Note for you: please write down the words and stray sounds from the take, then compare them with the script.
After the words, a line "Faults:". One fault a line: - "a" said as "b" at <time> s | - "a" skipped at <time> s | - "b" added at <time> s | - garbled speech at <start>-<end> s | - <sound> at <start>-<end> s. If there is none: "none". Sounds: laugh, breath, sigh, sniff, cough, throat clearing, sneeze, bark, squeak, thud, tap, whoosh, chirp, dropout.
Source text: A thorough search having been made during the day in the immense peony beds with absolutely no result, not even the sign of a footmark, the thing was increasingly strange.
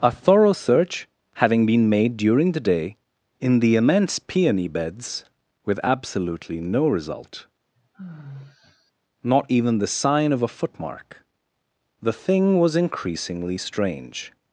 A thorough search having been made during the day in the immense peony beds with absolutely no result, not even the sign of a footmark, the thing was increasingly strange.
Faults:
- sigh at 7.8-8.9 s